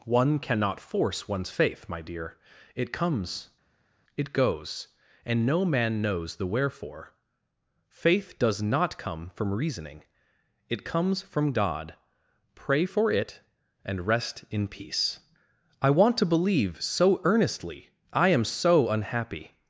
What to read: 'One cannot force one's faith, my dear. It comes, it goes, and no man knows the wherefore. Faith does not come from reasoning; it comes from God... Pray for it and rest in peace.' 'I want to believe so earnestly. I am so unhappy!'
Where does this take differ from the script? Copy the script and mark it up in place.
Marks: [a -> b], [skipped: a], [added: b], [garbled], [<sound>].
'One cannot force one's faith, my dear. It comes, it goes, and no man knows the wherefore. Faith does not come from reasoning; it comes from God... Pray for it and rest in peace.' 'I want to believe so earnestly. I am so unhappy!'